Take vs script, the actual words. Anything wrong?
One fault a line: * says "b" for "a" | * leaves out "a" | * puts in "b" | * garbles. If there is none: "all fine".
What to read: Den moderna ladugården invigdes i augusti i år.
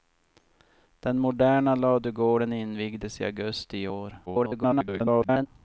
* garbles